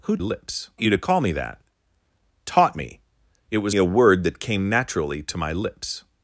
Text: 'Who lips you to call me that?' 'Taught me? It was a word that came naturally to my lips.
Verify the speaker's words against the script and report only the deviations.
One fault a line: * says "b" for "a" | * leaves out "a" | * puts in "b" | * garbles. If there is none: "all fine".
all fine